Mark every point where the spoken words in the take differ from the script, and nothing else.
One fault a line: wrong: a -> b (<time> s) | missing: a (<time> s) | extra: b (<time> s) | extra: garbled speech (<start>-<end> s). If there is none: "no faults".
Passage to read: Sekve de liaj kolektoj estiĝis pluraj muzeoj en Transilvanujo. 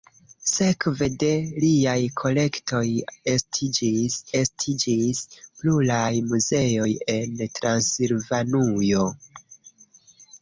extra: estiĝis (4.4 s)